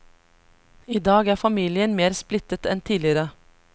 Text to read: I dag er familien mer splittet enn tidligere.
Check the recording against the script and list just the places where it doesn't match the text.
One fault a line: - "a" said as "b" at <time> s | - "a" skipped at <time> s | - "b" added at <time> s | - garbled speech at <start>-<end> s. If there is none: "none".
none